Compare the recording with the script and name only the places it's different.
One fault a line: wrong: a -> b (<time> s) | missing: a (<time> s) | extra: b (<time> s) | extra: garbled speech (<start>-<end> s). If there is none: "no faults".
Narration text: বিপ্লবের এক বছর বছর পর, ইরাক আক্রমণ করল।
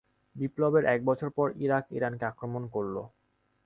missing: বছর (1.3 s)
extra: ইরানকে (1.9 s)